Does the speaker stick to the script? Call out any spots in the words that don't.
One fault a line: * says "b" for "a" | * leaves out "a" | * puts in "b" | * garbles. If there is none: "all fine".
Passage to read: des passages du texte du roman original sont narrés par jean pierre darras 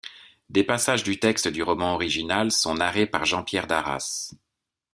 all fine